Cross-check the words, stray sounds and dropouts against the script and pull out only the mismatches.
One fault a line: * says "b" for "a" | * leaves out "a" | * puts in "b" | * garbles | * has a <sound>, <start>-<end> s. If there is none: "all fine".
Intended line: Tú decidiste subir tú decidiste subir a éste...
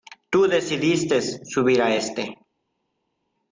* leaves out "tú decidiste subir"